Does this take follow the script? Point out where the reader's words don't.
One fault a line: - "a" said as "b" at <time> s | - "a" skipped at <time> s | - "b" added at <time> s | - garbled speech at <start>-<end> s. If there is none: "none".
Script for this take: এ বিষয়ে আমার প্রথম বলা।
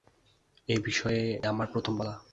none